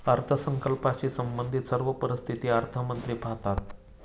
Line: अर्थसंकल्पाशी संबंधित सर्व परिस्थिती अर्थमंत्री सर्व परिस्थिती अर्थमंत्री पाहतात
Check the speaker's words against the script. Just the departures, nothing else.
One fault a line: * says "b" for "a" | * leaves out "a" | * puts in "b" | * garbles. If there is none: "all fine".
* leaves out "सर्व परिस्थिती अर्थमंत्री"